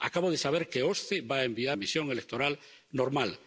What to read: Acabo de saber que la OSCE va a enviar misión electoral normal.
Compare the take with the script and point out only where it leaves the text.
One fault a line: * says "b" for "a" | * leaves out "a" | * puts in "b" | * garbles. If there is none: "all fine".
all fine